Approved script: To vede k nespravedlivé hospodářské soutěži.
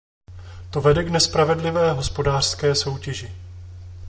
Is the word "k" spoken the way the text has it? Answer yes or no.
yes